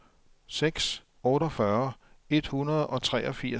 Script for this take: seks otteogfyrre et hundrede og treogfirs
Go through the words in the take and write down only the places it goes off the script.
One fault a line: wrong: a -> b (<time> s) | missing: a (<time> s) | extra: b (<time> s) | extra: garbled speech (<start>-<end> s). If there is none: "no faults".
no faults